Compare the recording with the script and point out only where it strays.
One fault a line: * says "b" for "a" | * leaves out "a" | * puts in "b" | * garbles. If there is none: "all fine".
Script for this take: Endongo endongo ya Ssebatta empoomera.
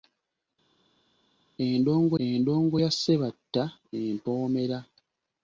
all fine